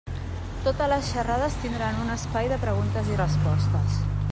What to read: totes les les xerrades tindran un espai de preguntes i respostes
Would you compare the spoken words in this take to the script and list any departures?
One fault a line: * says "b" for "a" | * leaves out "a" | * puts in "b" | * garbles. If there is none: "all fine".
* leaves out "les"